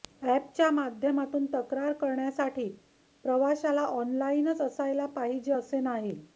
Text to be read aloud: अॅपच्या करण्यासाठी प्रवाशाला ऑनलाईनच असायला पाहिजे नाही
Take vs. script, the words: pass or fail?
fail